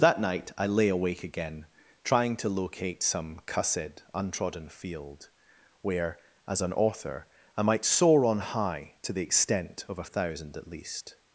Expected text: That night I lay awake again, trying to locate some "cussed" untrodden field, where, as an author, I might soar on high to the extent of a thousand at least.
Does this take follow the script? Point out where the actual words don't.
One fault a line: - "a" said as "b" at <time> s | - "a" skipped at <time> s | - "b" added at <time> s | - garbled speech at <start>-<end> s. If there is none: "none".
none